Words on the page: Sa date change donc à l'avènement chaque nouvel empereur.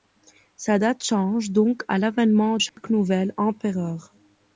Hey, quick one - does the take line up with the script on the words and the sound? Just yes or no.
no